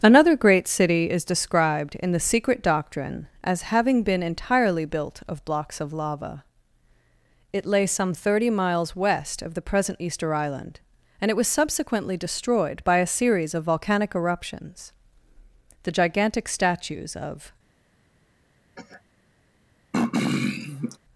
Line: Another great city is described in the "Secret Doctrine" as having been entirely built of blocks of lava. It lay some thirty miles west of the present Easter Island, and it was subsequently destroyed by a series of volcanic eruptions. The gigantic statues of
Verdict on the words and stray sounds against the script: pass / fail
fail